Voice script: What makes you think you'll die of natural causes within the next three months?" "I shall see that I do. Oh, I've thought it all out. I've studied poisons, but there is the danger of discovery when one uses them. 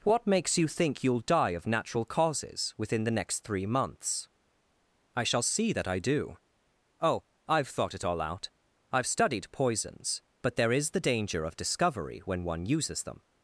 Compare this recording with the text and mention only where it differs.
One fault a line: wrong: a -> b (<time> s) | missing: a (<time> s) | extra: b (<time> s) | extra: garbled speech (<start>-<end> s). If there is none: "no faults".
no faults